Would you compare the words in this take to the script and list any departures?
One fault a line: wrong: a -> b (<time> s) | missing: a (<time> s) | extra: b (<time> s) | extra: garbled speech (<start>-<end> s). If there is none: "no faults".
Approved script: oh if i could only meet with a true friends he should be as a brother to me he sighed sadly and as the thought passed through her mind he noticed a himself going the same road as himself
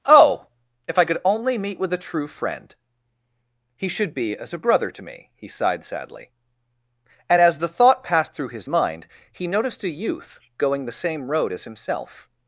wrong: friends -> friend (2.3 s)
wrong: her -> his (8.5 s)
wrong: himself -> youth (9.9 s)